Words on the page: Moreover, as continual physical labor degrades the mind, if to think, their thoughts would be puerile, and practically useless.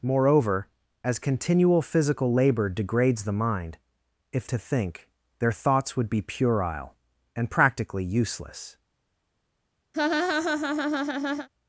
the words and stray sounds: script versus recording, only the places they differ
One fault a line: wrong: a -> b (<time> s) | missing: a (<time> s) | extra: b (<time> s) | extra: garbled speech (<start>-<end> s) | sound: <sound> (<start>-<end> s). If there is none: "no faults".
sound: laugh (9.9-11.5 s)